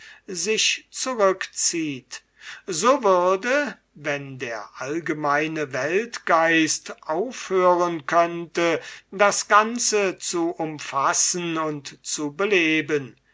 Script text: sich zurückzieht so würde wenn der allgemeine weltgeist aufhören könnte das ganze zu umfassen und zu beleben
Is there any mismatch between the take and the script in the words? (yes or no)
no